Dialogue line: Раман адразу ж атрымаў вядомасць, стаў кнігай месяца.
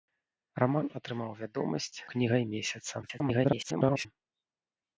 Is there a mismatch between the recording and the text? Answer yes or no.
yes